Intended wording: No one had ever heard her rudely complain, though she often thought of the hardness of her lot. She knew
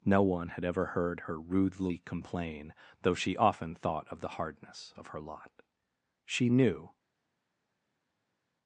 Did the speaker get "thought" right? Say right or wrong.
right